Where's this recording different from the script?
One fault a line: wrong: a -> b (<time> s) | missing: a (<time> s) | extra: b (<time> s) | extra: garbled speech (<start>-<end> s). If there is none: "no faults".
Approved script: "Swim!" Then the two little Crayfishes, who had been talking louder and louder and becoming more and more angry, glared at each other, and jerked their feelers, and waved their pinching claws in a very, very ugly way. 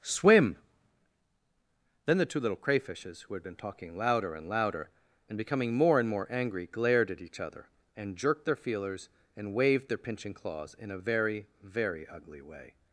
no faults